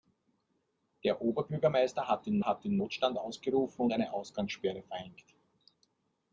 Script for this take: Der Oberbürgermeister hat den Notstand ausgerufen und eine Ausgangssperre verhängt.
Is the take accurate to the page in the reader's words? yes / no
no